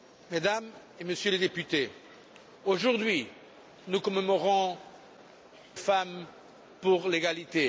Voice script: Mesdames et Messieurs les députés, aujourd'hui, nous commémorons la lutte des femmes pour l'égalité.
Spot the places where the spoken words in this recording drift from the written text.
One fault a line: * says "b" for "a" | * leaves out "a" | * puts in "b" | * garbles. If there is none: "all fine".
* leaves out "la lutte des"